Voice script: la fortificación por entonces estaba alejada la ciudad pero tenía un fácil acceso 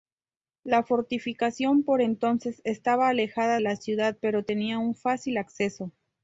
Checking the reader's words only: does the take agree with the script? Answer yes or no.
yes